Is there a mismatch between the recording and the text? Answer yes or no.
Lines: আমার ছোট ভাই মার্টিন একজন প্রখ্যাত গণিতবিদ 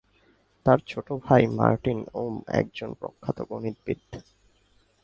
yes